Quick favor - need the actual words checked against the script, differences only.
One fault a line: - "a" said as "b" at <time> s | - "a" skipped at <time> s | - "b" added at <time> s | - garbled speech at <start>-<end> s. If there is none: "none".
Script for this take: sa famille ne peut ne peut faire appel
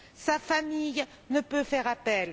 - "ne peut" skipped at 1.6 s